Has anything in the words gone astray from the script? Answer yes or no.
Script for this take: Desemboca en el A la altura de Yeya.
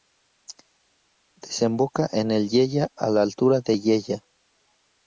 yes